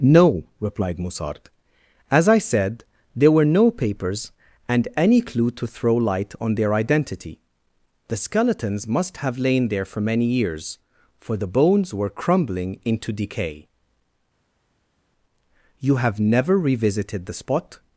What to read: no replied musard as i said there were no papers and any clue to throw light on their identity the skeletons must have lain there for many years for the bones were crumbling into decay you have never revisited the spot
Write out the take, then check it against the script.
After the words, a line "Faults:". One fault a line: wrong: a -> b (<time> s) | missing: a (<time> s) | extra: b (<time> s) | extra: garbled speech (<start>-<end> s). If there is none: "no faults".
no replied musard as i said there were no papers and any clue to throw light on their identity the skeletons must have lain there for many years for the bones were crumbling into decay you have never revisited the spot
Faults:
no faults